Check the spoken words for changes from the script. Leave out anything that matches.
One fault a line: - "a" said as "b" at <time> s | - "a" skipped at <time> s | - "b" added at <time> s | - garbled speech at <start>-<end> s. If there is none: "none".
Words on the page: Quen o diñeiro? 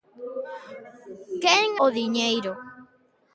none